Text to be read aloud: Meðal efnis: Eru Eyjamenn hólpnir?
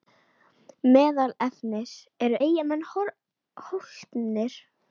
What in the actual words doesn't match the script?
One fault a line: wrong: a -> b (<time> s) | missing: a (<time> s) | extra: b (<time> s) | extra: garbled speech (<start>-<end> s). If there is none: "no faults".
no faults